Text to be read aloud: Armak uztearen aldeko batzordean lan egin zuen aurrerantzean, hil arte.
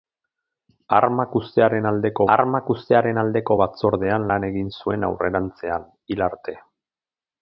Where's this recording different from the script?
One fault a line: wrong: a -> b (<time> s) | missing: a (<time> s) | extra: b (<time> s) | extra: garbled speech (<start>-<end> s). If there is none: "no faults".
extra: armak uztearen aldeko (2.4 s)